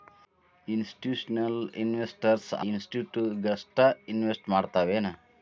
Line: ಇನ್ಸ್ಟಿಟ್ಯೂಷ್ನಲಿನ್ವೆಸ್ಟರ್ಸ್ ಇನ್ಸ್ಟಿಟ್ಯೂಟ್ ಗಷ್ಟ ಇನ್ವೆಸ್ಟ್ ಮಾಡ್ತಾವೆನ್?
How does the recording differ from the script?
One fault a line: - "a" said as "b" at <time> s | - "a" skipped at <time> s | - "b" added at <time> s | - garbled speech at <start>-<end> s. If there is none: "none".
none